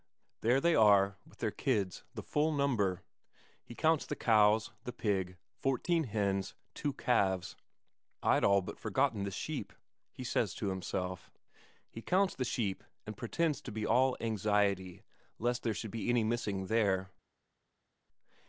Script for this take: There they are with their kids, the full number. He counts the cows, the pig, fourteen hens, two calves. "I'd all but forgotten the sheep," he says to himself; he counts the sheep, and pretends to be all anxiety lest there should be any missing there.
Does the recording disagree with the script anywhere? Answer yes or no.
no